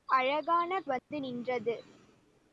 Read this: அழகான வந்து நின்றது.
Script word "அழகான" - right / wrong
right